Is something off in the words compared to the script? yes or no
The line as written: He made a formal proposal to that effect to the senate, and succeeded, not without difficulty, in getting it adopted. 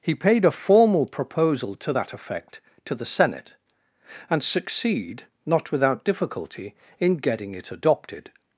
yes